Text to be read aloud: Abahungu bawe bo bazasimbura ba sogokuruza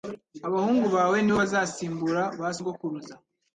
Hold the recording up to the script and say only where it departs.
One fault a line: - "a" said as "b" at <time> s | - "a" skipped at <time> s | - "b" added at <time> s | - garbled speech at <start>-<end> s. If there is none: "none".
- "ni" added at 1.2 s